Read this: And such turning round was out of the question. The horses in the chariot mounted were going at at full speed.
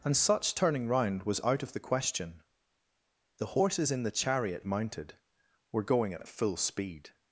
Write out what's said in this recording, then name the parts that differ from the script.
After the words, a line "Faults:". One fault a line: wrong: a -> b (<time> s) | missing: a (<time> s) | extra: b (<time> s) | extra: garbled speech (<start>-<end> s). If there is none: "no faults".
And such turning round was out of the question. The horses in the chariot mounted were going at at full speed.
Faults:
no faults